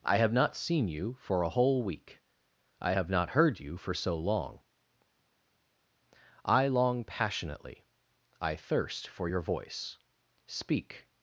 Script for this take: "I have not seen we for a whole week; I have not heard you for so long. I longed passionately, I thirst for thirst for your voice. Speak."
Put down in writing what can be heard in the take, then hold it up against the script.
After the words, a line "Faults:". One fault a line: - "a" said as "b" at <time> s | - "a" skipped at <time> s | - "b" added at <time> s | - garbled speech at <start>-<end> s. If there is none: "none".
"I have not seen you for a whole week; I have not heard you for so long. I long passionately, I thirst for your voice. Speak."
Faults:
- "we" said as "you" at 0.9 s
- "longed" said as "long" at 6.7 s
- "thirst for" skipped at 9.3 s